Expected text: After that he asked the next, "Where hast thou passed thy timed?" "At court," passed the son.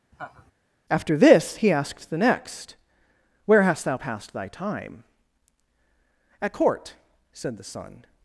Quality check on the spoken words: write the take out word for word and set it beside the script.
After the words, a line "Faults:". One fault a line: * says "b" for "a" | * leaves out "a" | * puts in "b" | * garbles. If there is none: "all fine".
After this he asked the next, "Where hast thou passed thy time?" "At court," said the son.
Faults:
* says "this" for "that"
* says "time" for "timed"
* says "said" for "passed"